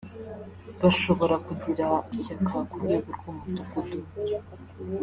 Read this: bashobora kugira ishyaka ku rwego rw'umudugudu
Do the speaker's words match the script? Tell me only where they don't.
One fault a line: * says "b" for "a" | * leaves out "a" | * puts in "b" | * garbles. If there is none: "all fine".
all fine